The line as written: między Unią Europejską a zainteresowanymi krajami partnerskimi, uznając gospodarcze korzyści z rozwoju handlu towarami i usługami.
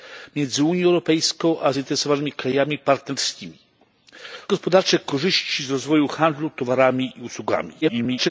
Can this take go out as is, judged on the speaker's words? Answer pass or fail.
fail